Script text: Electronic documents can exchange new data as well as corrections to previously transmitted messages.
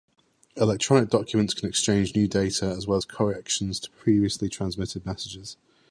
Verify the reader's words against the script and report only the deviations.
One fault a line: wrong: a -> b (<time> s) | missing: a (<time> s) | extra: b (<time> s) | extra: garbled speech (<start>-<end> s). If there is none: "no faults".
no faults